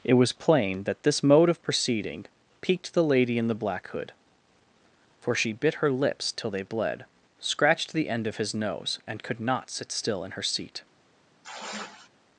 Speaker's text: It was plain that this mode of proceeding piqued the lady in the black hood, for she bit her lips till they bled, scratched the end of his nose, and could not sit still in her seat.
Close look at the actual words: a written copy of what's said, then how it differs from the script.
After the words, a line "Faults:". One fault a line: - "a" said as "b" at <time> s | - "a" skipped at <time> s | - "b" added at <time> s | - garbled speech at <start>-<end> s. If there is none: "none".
It was plain that this mode of proceeding piqued the lady in the black hood, for she bit her lips till they bled, scratched the end of his nose, and could not sit still in her seat.
Faults:
none